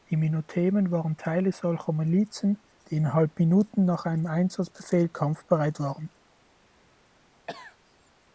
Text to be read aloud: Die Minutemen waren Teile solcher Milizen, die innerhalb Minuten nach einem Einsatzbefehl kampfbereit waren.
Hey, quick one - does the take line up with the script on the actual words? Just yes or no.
yes